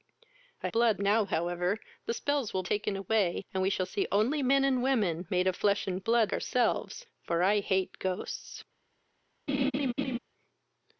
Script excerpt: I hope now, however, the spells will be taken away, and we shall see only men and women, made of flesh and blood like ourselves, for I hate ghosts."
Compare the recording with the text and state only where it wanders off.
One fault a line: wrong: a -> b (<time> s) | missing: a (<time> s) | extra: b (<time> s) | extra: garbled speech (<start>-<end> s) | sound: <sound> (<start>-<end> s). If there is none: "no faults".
wrong: hope -> blood (0.7 s)
missing: be (2.6 s)
missing: like (6.3 s)
sound: laugh (9.5-10.2 s)